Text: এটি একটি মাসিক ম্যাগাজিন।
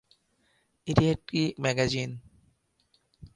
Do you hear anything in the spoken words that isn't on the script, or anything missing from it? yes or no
yes